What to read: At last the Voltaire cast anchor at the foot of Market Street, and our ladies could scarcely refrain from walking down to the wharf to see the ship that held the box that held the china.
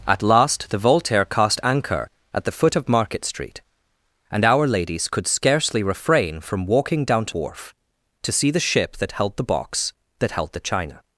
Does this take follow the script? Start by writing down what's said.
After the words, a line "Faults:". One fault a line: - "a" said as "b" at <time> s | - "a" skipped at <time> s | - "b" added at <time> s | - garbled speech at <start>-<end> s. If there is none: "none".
At last the Voltaire cast anchor at the foot of Market Street, and our ladies could scarcely refrain from walking down to wharf to see the ship that held the box that held the china.
Faults:
- "the" skipped at 7.3 s